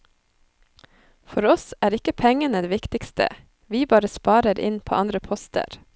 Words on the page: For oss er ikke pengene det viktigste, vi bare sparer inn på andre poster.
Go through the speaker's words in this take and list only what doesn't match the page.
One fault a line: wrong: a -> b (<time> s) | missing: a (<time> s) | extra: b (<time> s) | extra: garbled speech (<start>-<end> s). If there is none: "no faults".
no faults